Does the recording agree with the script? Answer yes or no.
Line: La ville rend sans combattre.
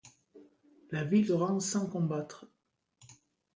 yes